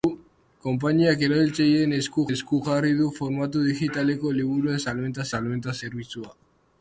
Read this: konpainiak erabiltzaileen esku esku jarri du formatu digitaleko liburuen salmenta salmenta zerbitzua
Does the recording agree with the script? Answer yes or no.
yes